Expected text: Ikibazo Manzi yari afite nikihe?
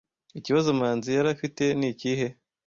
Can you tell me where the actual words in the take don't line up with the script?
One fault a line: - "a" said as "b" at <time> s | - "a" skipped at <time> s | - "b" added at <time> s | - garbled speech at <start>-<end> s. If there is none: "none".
none